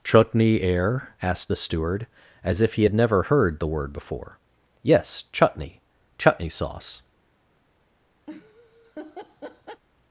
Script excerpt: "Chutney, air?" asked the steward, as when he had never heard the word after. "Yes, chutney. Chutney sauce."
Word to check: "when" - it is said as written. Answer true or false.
false